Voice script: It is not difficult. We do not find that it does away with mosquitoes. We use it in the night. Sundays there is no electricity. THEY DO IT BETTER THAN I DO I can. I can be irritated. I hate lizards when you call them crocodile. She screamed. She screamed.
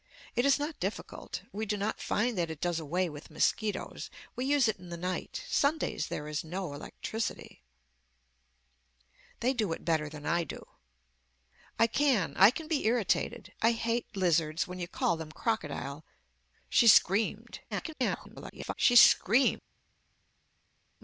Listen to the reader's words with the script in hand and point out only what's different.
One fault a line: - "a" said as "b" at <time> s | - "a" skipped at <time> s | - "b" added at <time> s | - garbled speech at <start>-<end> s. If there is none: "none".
- garbled speech at 17.7-18.7 s